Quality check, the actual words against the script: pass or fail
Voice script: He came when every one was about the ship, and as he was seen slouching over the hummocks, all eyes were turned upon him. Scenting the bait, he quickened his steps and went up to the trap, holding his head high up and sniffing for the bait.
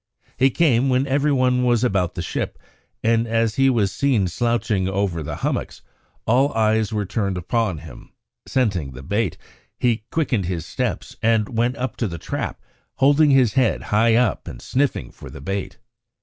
pass